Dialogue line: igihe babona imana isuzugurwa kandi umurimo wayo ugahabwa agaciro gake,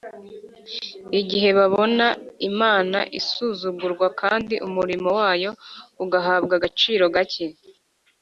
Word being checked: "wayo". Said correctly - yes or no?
yes